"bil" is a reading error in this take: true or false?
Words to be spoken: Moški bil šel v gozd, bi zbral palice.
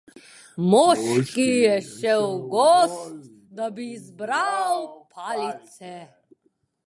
true